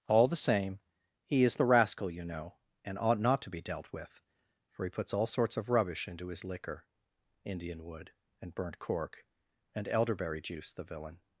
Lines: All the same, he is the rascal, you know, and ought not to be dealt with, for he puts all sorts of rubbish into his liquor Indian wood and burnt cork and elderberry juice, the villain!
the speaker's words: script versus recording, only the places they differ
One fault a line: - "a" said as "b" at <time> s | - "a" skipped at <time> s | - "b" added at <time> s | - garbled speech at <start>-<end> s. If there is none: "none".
none